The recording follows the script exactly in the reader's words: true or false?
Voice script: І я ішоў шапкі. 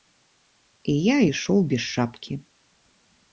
false